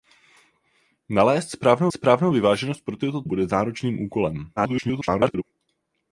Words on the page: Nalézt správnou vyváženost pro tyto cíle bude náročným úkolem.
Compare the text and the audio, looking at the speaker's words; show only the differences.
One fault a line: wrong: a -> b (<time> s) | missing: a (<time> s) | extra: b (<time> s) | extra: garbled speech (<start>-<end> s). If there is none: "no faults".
extra: správnou (1.9 s)
missing: cíle (3.2 s)
extra: garbled speech (4.6-5.4 s)